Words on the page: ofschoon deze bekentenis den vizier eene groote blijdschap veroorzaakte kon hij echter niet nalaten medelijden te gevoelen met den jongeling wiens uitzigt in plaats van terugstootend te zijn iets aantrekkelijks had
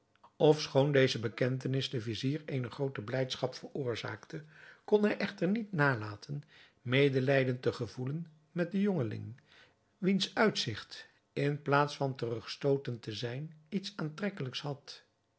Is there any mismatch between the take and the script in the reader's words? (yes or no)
no